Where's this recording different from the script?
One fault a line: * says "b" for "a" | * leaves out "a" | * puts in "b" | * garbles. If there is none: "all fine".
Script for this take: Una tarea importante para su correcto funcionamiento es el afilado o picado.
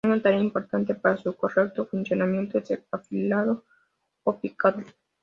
all fine